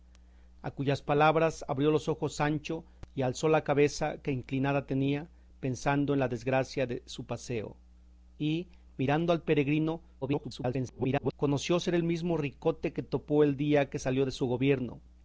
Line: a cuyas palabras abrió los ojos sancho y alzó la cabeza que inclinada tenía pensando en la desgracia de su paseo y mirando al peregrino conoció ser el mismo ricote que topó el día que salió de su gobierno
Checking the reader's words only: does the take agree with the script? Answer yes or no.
no